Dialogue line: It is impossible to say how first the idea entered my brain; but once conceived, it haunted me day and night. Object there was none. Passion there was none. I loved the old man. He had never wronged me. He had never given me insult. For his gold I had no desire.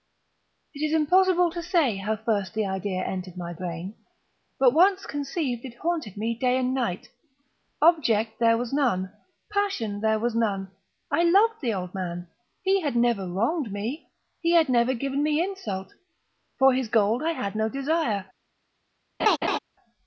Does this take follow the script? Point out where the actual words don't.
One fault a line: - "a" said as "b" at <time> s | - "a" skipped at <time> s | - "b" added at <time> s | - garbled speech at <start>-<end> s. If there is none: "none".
none